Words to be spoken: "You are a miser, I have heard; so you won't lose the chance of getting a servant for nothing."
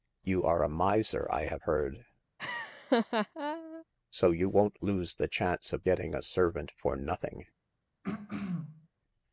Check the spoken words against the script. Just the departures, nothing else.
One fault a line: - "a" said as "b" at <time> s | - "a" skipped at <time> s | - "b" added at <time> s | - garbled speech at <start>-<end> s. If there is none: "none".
none